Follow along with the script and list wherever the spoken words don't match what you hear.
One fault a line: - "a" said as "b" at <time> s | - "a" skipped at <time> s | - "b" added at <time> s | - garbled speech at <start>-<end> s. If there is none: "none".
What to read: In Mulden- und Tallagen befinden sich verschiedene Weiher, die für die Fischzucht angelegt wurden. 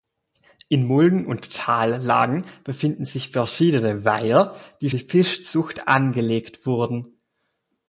- "für" skipped at 4.9 s